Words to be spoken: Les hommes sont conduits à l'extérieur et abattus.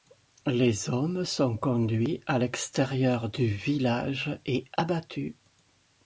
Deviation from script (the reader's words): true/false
true